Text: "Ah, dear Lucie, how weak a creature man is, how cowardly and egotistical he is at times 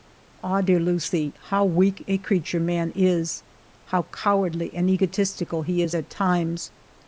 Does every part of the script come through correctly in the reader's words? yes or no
yes